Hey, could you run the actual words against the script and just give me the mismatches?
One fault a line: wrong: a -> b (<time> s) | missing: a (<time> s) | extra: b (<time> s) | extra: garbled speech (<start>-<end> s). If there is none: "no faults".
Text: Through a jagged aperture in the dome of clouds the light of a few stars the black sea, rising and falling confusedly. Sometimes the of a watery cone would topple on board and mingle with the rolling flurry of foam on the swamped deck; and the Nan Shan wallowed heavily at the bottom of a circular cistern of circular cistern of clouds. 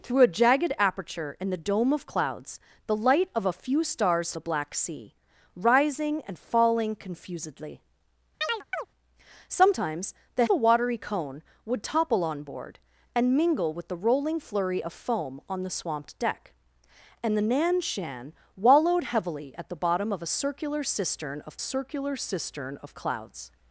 no faults